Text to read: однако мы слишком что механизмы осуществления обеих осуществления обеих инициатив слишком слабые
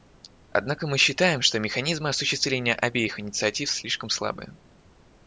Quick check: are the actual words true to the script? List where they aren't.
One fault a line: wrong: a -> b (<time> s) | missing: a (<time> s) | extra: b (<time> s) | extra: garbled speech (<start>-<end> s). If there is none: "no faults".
wrong: слишком -> считаем (1.0 s)
missing: осуществления обеих (3.2 s)